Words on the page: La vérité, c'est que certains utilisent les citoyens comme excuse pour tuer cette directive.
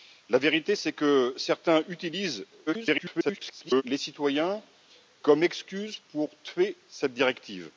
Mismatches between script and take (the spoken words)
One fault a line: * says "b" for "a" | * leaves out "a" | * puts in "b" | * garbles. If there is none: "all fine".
* garbles